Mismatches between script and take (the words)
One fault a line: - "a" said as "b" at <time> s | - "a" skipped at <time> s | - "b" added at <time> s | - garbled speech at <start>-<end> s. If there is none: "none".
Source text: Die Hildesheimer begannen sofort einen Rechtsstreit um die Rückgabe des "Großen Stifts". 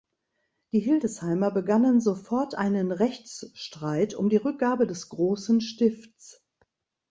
none